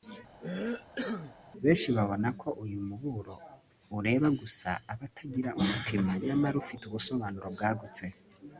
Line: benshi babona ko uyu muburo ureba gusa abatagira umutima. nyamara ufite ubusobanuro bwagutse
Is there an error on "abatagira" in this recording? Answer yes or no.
no